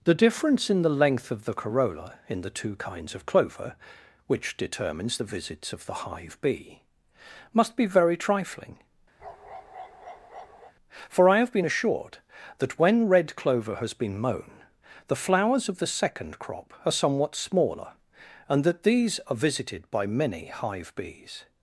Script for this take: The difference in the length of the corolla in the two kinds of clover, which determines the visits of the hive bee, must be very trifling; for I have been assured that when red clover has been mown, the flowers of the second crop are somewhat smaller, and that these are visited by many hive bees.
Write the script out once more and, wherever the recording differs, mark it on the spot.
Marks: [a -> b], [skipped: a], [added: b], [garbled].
The difference in the length of the corolla in the two kinds of clover, which determines the visits of the hive bee, must be very trifling; for I have been assured that when red clover has been mown, the flowers of the second crop are somewhat smaller, and that these are visited by many hive bees.